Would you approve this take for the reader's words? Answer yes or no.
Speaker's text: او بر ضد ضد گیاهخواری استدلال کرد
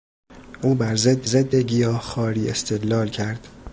yes